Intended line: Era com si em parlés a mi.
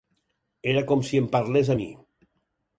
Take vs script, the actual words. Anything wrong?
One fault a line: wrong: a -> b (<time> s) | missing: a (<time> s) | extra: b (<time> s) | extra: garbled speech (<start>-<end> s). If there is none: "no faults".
no faults